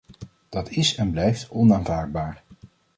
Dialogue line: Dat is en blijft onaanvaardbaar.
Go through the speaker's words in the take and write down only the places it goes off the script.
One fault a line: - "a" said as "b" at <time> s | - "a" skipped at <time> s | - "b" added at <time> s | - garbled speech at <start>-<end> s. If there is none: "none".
none